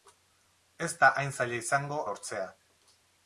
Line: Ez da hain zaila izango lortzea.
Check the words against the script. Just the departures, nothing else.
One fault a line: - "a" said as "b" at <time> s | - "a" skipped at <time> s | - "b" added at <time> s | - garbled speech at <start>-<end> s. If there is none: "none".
none